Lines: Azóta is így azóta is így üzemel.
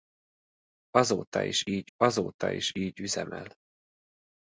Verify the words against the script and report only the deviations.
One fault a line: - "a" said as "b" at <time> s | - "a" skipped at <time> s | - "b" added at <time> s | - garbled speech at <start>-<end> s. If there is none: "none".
none